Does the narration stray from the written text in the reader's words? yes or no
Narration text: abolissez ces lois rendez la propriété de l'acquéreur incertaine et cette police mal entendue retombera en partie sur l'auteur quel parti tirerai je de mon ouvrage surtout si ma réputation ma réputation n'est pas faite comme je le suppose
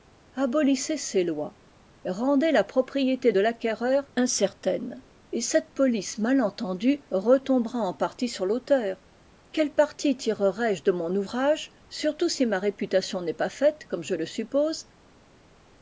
yes